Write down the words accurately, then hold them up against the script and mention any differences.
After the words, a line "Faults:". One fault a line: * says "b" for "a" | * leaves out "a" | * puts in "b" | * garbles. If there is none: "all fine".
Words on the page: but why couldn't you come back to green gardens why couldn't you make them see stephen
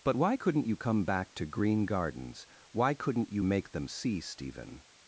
but why couldn't you come back to green gardens why couldn't you make them see stephen
Faults:
all fine